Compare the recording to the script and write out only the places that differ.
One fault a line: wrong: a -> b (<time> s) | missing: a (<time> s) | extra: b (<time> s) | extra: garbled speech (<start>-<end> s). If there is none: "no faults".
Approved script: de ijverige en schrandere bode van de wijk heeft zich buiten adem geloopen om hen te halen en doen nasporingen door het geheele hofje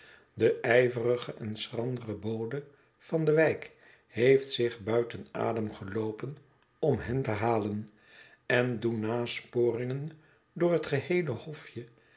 no faults